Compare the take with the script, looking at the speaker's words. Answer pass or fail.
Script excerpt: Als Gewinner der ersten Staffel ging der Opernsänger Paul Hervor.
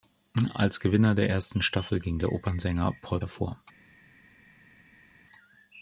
pass